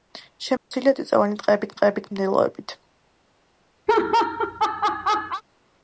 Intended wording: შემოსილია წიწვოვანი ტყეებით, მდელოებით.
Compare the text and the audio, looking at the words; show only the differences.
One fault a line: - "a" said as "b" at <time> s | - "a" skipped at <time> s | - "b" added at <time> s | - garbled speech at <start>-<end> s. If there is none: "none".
- "ტყეებით" added at 1.8 s